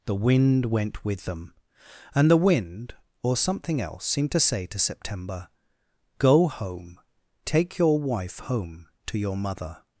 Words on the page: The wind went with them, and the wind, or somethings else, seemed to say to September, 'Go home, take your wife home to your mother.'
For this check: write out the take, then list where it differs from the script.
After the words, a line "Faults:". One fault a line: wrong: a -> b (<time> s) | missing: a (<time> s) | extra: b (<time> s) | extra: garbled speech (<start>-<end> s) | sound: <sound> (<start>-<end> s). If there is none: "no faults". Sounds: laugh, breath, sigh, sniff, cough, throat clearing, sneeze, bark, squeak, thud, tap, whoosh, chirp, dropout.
The wind went with them, and the wind, or something else, seemed to say to September, 'Go home, take your wife home to your mother.'
Faults:
wrong: somethings -> something (3.4 s)